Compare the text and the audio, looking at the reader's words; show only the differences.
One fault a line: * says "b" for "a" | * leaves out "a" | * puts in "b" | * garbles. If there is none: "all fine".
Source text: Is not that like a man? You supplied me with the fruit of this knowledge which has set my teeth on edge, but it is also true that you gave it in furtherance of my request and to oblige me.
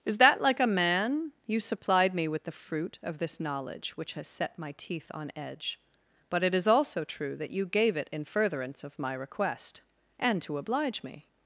* leaves out "not"